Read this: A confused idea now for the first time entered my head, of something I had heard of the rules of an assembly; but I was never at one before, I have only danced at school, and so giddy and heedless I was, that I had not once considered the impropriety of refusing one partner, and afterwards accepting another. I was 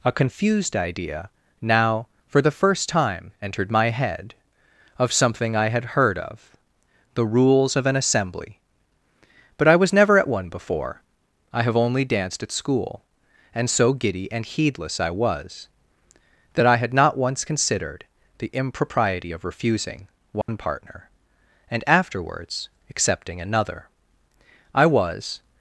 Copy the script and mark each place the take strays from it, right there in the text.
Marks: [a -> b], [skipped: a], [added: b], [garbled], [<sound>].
A confused idea now for the first time entered my head, of something I had heard of the rules of an assembly; but I was never at one before, I have only danced at school, and so giddy and heedless I was, that I had not once considered the impropriety of refusing one [dropout] partner, and afterwards accepting another. I was